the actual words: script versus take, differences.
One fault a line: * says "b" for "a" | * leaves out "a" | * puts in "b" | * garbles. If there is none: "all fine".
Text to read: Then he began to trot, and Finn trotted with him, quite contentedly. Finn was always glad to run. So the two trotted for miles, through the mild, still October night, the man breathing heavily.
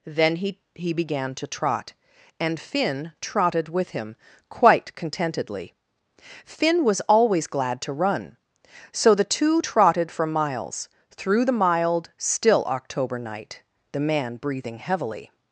* puts in "he"